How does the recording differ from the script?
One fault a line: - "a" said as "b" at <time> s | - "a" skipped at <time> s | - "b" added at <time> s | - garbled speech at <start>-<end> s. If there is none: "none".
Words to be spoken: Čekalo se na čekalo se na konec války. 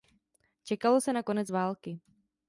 - "čekalo se na" skipped at 1.2 s